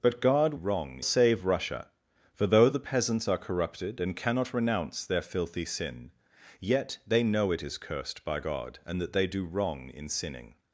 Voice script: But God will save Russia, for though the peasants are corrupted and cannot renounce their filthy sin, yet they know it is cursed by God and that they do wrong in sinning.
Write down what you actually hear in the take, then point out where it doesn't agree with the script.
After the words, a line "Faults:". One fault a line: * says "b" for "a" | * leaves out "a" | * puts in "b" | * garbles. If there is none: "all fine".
But God wrong save Russia, for though the peasants are corrupted and cannot renounce their filthy sin, yet they know it is cursed by God and that they do wrong in sinning.
Faults:
* says "wrong" for "will"